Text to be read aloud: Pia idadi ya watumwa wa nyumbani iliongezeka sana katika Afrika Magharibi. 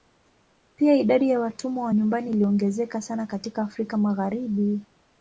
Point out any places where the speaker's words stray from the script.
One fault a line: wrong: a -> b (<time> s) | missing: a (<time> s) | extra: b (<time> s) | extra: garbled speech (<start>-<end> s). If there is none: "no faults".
no faults